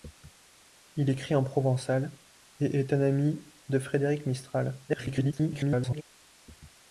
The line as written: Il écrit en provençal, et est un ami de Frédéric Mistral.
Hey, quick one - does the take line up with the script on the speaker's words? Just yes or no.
no